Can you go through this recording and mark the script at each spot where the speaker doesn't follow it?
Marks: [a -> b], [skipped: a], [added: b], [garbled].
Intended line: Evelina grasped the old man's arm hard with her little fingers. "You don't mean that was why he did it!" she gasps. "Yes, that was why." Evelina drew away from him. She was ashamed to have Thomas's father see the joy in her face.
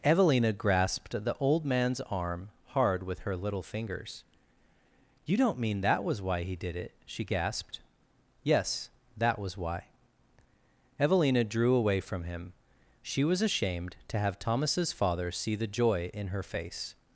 Evelina grasped the old man's arm hard with her little fingers. "You don't mean that was why he did it!" she [gasps. -> gasped] "Yes, that was why." Evelina drew away from him. She was ashamed to have Thomas's father see the joy in her face.